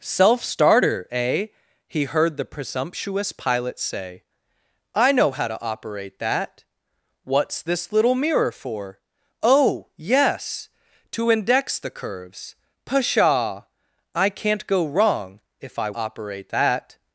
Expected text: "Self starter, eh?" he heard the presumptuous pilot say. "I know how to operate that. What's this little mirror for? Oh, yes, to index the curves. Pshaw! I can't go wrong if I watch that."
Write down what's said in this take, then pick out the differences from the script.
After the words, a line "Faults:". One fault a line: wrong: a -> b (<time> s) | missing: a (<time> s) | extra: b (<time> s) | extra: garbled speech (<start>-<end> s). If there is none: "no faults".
"Self starter, eh?" he heard the presumptuous pilot say. "I know how to operate that. What's this little mirror for? Oh, yes, to index the curves. Pshaw! I can't go wrong if I operate that."
Faults:
wrong: watch -> operate (15.9 s)